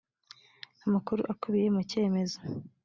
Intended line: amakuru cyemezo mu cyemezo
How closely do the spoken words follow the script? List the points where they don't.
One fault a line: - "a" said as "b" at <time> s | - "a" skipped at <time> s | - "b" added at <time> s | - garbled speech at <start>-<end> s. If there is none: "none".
- "cyemezo" said as "akubiye" at 1.3 s